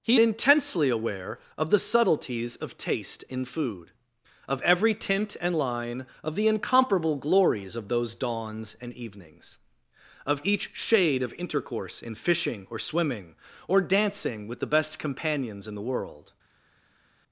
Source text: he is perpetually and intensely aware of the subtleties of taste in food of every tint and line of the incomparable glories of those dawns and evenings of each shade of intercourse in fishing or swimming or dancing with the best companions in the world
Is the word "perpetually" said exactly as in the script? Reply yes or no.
no